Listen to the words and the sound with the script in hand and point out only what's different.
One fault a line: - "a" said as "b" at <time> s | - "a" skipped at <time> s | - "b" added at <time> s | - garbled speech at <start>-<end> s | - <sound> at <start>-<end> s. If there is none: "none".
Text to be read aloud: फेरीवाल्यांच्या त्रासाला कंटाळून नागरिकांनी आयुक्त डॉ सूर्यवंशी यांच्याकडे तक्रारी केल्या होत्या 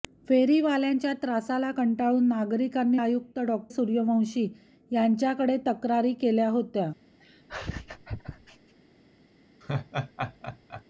- laugh at 7.2-8.7 s
- laugh at 9.6-10.8 s